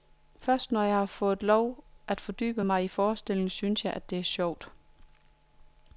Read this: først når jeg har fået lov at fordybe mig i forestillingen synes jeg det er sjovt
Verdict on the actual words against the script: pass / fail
pass